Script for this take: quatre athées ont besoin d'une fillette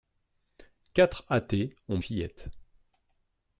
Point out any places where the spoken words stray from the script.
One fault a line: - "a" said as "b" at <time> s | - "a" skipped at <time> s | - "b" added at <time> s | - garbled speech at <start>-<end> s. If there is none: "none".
- "besoin d'une" skipped at 2.0 s